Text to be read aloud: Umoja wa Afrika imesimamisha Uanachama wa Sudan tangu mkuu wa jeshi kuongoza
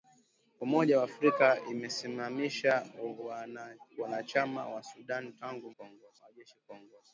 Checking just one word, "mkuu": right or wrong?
wrong